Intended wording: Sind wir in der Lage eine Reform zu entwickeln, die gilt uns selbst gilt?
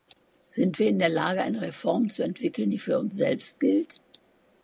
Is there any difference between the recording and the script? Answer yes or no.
yes